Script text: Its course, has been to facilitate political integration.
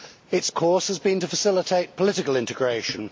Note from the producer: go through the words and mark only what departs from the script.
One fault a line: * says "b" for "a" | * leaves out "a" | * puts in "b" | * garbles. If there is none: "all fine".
all fine